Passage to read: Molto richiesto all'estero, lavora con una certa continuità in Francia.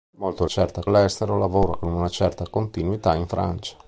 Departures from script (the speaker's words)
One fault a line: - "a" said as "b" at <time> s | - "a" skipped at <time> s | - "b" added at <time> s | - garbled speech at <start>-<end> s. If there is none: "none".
- "richiesto" said as "certa" at 0.4 s